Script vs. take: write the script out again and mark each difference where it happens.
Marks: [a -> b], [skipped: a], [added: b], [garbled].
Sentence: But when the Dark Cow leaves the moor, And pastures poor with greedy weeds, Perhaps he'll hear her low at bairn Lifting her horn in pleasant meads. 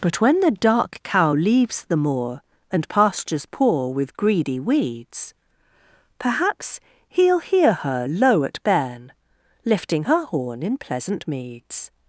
But when the Dark Cow leaves the moor, And pastures poor with greedy weeds, Perhaps he'll hear her low at bairn Lifting her horn in pleasant meads.